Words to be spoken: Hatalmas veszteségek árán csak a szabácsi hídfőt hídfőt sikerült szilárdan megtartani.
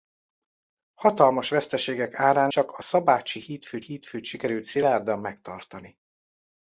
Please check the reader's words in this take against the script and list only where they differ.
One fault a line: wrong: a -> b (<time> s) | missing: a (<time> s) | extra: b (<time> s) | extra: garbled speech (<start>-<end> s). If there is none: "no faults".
no faults